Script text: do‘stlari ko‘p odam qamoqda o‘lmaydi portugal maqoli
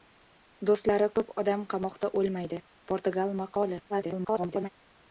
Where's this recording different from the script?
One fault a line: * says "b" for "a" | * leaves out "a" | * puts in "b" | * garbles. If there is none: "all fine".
* garbles